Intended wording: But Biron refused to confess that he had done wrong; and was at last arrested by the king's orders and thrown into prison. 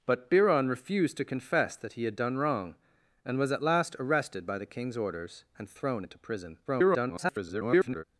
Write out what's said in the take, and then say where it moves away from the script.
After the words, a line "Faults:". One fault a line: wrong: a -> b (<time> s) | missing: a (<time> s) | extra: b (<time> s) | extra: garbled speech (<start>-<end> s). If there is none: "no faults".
But Biron refused to confess that he had done wrong; and was at last arrested by the king's orders and thrown into prison. [garbled]
Faults:
extra: garbled speech (6.6-8.0 s)